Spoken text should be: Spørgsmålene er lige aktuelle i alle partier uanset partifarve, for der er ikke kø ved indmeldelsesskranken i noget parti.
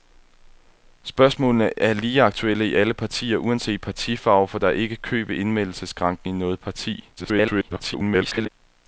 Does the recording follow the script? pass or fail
fail